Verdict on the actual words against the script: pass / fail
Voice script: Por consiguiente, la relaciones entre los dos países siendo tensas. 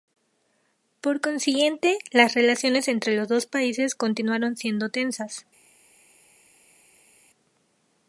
fail